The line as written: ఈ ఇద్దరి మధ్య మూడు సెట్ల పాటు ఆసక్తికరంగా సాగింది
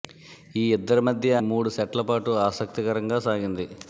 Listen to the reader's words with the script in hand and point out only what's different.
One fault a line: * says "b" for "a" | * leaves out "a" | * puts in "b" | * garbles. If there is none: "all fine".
all fine